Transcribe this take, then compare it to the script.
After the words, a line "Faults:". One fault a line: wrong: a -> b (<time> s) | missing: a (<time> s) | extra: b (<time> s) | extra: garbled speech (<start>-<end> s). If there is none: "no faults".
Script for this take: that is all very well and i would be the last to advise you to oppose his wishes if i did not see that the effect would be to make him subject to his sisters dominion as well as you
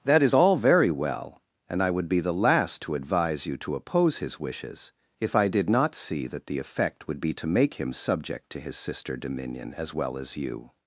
that is all very well and i would be the last to advise you to oppose his wishes if i did not see that the effect would be to make him subject to his sister dominion as well as you
Faults:
wrong: sisters -> sister (8.8 s)